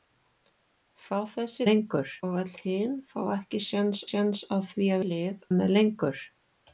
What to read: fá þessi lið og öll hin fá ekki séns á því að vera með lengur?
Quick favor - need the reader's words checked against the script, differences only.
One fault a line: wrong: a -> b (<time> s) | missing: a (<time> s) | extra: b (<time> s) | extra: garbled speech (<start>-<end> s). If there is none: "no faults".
wrong: lið -> lengur (1.7 s)
extra: séns (4.1 s)
wrong: vera -> lið (5.1 s)